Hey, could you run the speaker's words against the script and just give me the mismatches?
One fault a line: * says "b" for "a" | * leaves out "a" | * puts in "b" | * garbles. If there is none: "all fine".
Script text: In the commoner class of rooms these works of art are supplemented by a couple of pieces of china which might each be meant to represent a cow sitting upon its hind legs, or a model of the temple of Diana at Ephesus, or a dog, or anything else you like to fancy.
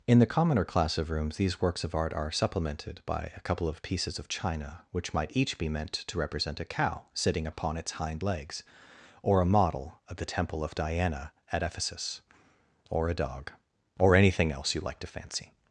all fine